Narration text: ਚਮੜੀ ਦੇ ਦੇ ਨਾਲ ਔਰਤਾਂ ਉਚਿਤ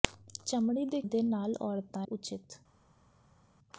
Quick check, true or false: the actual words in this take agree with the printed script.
true